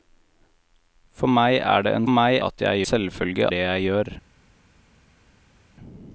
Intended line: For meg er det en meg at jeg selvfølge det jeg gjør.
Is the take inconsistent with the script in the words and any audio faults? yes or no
no